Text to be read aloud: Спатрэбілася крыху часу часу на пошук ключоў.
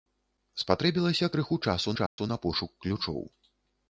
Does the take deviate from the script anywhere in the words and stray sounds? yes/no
yes